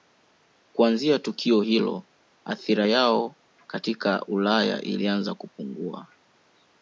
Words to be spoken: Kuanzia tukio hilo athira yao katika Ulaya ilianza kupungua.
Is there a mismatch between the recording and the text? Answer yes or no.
no